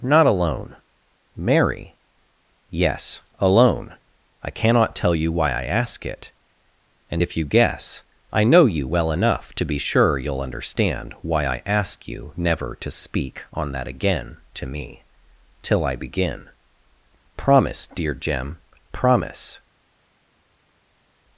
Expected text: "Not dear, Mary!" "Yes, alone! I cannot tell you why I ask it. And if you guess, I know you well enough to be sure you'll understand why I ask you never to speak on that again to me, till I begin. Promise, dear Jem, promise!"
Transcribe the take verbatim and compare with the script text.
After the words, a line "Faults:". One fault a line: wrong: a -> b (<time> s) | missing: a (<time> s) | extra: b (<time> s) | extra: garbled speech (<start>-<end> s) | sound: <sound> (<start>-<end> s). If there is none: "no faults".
"Not alone, Mary!" "Yes, alone! I cannot tell you why I ask it. And if you guess, I know you well enough to be sure you'll understand why I ask you never to speak on that again to me, till I begin. Promise, dear Jem, promise!"
Faults:
wrong: dear -> alone (0.2 s)